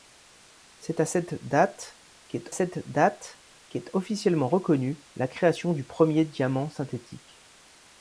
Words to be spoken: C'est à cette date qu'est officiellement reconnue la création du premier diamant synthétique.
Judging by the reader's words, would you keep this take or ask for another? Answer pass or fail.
fail